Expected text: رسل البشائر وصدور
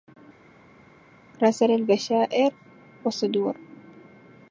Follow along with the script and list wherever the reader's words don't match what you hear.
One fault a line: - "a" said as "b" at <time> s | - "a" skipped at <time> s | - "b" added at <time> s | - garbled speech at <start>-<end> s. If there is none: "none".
none